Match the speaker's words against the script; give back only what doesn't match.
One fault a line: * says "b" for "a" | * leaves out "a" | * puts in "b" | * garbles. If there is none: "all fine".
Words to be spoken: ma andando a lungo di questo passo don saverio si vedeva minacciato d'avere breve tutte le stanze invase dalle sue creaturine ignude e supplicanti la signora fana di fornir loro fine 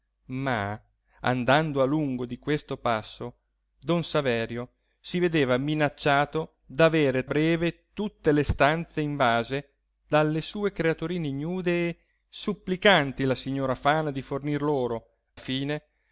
all fine